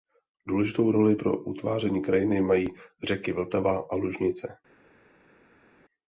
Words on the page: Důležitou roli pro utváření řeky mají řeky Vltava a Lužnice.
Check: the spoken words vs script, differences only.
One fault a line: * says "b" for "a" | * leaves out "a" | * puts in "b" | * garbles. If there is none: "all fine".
* says "krajiny" for "řeky"